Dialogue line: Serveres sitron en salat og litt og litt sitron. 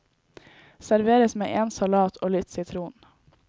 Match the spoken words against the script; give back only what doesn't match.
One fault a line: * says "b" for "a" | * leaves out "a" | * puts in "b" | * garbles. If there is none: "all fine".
* says "med" for "sitron"
* leaves out "og litt"